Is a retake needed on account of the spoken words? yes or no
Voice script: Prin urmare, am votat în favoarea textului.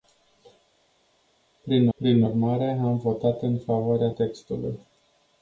yes